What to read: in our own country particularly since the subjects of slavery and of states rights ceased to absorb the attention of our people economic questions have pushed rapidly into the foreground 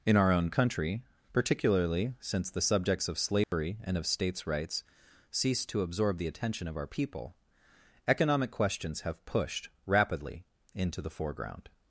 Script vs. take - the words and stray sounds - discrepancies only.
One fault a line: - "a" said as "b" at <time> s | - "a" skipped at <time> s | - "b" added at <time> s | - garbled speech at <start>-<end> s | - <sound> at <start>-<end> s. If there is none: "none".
- dropout at 3.4-3.5 s